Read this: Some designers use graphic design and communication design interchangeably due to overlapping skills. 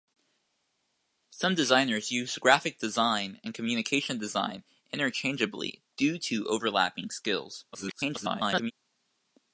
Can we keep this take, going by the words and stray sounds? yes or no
no